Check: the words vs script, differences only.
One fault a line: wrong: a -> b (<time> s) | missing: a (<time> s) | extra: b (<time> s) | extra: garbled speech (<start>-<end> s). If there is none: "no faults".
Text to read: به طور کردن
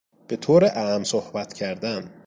extra: اعم صحبت (0.6 s)